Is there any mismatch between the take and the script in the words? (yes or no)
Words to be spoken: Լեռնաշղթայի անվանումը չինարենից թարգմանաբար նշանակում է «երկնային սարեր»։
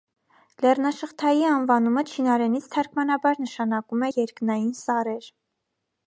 no